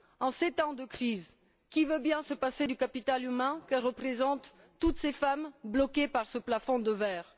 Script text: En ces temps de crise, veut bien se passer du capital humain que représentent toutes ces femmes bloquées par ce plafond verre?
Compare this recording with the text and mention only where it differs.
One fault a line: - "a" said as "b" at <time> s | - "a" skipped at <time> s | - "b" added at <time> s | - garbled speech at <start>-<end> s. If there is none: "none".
- "qui" added at 1.7 s
- "de" added at 6.8 s